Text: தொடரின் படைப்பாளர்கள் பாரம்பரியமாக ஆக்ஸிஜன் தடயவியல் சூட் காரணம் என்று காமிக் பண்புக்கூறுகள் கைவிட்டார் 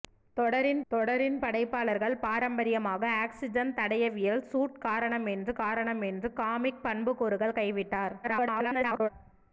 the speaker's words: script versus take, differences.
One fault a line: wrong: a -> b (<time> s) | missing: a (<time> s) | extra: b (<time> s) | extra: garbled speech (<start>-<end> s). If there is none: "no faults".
extra: தொடரின் (0.9 s)
extra: காரணம் என்று (5.6 s)
extra: garbled speech (8.2-9.1 s)